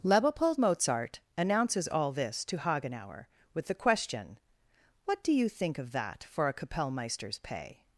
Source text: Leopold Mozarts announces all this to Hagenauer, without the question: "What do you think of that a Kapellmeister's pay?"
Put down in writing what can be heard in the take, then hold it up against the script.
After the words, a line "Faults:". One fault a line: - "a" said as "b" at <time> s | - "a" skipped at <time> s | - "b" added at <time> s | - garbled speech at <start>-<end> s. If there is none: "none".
Leopold Mozart announces all this to Hagenauer, with the question: "What do you think of that for a Kapellmeister's pay?"
Faults:
- "Mozarts" said as "Mozart" at 0.6 s
- "without" said as "with" at 3.5 s
- "for" added at 6.2 s